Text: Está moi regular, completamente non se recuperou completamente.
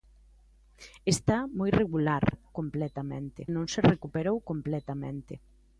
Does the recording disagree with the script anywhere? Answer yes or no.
no